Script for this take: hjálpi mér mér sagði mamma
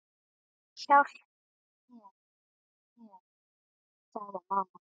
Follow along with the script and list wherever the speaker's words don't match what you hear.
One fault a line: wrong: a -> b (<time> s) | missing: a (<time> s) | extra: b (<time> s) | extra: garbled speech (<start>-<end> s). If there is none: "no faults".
no faults